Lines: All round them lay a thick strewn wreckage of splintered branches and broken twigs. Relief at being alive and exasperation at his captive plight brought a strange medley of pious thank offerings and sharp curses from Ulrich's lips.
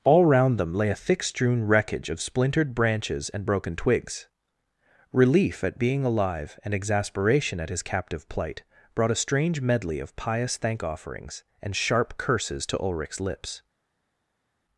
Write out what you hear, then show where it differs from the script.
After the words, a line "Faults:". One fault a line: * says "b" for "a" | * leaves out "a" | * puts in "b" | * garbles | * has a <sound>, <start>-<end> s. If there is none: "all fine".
All round them lay a thick strewn wreckage of splintered branches and broken twigs. Relief at being alive and exasperation at his captive plight brought a strange medley of pious thank offerings and sharp curses to Ulrich's lips.
Faults:
* says "to" for "from"